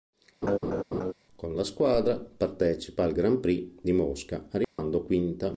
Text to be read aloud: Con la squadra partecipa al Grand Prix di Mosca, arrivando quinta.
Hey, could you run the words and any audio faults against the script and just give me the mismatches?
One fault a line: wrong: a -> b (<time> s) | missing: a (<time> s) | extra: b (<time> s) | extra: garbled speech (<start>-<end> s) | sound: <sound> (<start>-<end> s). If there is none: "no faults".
sound: laugh (0.4-1.1 s)
sound: dropout (4.6-4.8 s)